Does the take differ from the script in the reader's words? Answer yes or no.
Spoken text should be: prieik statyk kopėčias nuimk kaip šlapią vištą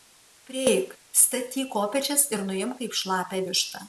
yes